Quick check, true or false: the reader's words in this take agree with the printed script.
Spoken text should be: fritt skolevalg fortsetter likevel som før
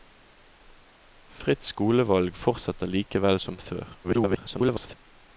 false